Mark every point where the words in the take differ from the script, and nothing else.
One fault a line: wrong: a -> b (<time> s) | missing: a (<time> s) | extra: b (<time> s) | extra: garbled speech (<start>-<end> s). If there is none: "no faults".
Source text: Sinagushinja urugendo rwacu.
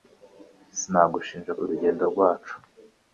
no faults